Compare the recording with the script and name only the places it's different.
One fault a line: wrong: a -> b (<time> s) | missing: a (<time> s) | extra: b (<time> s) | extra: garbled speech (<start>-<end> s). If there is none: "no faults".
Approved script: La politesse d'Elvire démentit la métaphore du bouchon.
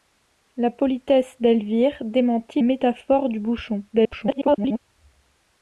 missing: la (2.6 s)
extra: garbled speech (3.9-4.8 s)